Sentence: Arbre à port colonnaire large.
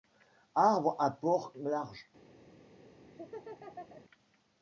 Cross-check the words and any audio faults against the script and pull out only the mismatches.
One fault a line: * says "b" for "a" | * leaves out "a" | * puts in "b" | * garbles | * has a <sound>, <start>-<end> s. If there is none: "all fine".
* leaves out "colonnaire"
* has a laugh, 3.0-4.0 s